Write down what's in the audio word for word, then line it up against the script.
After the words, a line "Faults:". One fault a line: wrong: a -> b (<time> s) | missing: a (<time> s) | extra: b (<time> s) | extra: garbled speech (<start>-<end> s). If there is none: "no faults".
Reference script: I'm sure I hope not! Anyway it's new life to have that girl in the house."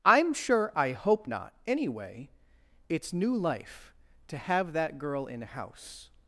I'm sure I hope not! Anyway it's new life to have that girl in house."
Faults:
missing: the (5.4 s)